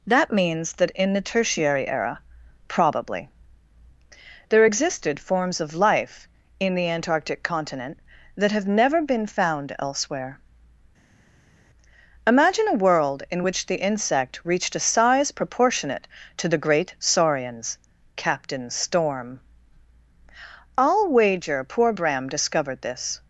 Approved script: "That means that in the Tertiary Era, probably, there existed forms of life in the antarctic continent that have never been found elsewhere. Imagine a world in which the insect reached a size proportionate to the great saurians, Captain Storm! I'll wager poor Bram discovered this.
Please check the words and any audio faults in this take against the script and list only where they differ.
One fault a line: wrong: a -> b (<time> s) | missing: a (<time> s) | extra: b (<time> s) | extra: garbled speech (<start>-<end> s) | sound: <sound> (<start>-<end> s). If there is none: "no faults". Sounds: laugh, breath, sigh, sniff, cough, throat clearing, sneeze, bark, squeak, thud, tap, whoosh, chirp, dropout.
no faults